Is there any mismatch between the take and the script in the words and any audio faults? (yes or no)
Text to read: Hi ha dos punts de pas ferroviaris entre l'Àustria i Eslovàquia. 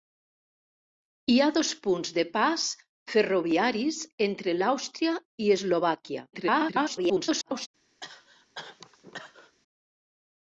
yes